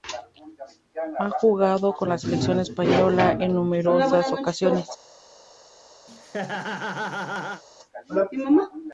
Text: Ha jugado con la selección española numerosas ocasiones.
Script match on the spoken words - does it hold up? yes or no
no